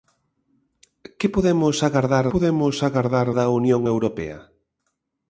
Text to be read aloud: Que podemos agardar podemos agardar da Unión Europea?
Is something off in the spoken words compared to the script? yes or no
no